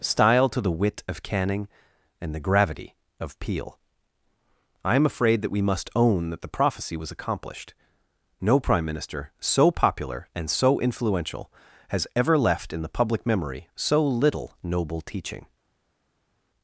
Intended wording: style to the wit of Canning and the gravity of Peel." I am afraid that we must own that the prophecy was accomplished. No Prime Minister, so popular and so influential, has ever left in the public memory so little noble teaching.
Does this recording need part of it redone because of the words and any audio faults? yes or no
no